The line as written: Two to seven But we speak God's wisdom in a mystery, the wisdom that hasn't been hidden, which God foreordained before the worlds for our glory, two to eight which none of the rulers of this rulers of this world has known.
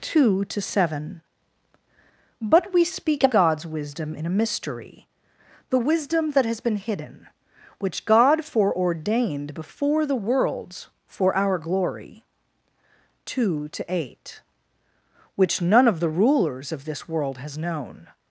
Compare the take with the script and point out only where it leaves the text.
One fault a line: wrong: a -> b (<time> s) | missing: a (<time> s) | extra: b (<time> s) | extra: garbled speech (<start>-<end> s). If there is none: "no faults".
wrong: hasn't -> has (6.5 s)
missing: rulers of this (17.1 s)